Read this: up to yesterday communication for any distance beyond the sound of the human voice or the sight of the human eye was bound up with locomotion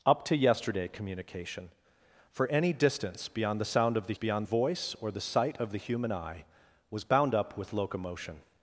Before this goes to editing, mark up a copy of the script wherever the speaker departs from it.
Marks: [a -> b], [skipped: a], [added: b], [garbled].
up to yesterday communication for any distance beyond the sound of the [human -> beyond] voice or the sight of the human eye was bound up with locomotion